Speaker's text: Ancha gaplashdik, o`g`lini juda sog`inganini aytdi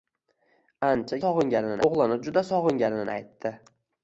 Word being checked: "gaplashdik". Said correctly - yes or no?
no